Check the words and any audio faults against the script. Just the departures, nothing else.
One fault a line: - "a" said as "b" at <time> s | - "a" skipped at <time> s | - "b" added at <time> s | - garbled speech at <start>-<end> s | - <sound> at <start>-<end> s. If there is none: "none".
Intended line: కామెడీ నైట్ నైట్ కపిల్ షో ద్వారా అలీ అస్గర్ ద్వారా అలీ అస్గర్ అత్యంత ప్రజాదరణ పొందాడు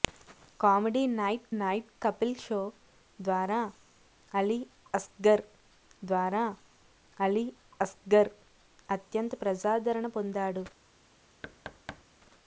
- thud at 11.4-12.0 s